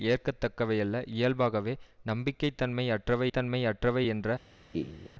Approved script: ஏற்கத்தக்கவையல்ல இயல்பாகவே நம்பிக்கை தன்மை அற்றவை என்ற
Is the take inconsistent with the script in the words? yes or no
yes